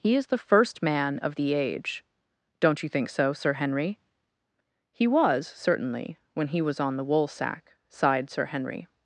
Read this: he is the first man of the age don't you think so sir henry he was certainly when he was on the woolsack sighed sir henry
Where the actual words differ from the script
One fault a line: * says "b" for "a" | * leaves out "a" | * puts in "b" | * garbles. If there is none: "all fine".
all fine